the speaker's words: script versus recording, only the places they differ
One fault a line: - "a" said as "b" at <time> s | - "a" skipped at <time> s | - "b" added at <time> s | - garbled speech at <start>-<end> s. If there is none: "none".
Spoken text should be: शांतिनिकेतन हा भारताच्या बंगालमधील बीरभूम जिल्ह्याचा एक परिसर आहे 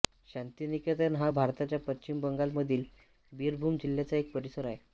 - "पश्चिम" added at 1.9 s